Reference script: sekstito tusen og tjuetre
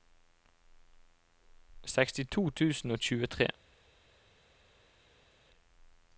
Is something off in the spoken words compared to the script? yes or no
no